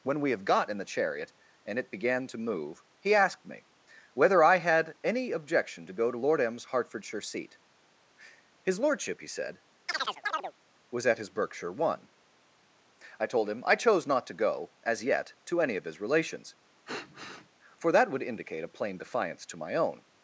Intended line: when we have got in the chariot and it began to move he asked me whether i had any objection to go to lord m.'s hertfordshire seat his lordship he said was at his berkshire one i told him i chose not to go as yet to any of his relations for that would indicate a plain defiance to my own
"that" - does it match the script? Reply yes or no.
yes